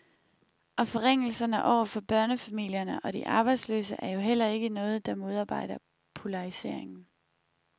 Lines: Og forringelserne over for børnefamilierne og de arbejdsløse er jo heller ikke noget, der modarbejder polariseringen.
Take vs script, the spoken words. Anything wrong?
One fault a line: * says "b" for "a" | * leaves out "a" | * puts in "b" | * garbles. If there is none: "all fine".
all fine